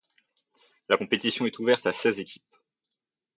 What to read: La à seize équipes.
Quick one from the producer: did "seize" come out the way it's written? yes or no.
yes